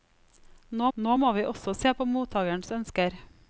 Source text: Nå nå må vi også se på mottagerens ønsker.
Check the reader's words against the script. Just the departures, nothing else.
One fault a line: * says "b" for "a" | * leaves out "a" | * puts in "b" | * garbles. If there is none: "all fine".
all fine